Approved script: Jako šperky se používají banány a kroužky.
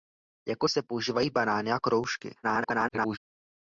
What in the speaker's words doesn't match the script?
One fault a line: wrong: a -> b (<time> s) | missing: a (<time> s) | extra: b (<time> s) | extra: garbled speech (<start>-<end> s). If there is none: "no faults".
missing: šperky (0.7 s)
extra: garbled speech (2.4-3.2 s)